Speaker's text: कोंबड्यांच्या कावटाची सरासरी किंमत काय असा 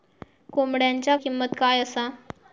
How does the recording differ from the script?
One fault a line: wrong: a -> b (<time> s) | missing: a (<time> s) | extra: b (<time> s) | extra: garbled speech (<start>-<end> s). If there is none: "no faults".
missing: कावटाची सरासरी (1.1 s)